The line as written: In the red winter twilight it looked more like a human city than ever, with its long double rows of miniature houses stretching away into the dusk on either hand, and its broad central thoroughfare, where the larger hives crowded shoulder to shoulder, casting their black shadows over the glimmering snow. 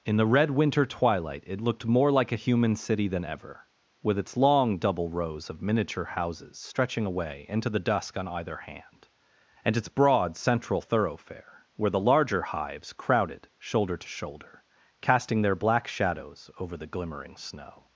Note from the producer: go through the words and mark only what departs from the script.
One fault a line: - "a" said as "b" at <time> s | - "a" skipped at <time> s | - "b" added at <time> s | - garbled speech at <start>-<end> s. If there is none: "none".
none